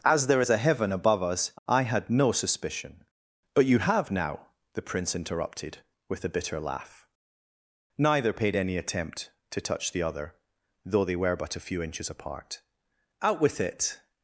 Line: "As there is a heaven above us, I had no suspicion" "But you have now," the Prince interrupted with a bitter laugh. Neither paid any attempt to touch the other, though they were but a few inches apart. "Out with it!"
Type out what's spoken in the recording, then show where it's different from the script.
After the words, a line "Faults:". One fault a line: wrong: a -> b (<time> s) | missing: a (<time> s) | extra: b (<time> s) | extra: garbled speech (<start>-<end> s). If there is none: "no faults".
"As there is a heaven above us, I had no suspicion" "But you have now," the Prince interrupted with a bitter laugh. Neither paid any attempt to touch the other, though they were but a few inches apart. "Out with it!"
Faults:
no faults